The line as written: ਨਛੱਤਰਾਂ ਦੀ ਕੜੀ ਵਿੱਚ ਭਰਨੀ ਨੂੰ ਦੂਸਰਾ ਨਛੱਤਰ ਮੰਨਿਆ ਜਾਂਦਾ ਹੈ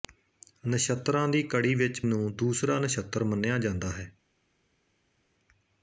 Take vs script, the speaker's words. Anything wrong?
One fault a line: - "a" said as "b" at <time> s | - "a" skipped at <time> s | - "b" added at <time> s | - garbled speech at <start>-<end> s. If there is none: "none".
- "ਭਰਨੀ" skipped at 2.0 s